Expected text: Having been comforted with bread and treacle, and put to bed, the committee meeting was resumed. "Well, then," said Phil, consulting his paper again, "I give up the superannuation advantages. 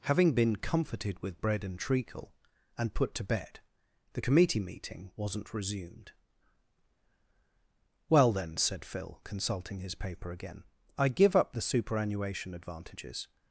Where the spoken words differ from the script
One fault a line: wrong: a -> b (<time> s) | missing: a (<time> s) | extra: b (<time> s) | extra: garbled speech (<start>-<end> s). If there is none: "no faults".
wrong: was -> wasn't (5.1 s)